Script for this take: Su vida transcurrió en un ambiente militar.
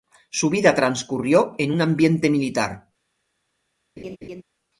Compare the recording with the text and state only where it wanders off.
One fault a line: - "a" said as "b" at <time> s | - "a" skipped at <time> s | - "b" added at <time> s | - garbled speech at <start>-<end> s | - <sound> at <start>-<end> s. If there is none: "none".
- laugh at 4.0-4.4 s